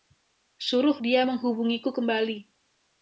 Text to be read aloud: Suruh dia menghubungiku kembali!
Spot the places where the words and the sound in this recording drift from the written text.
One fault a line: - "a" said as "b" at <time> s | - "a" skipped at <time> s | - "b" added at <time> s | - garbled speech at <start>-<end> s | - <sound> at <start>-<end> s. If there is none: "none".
none